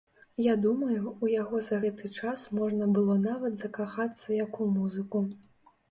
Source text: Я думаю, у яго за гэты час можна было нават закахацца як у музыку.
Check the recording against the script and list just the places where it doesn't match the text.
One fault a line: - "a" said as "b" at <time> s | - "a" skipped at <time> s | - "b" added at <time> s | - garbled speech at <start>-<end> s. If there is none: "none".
none